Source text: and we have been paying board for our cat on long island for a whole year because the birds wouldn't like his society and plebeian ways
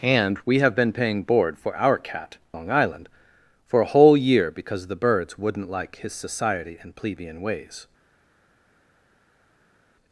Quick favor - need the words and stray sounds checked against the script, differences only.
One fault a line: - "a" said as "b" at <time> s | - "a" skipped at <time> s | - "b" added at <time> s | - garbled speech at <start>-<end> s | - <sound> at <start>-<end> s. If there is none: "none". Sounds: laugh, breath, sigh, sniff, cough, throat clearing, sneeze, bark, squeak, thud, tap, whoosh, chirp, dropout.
- "on" skipped at 2.4 s